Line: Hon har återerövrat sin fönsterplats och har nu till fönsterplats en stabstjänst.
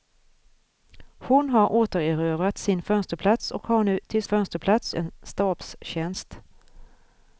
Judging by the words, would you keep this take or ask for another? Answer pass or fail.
pass